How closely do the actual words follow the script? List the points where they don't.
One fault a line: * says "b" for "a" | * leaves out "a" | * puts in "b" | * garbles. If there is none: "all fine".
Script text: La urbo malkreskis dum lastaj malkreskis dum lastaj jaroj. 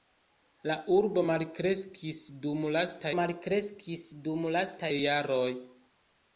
all fine